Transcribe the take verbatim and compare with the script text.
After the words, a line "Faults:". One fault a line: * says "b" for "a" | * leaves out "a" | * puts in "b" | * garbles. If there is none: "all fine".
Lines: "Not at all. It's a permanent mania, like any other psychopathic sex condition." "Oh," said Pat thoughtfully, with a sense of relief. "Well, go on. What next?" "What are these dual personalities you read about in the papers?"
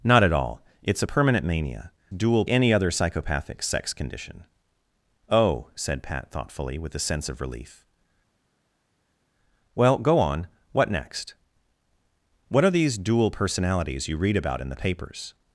"Not at all. It's a permanent mania, dual any other psychopathic sex condition." "Oh," said Pat thoughtfully, with a sense of relief. "Well, go on. What next?" "What are these dual personalities you read about in the papers?"
Faults:
* says "dual" for "like"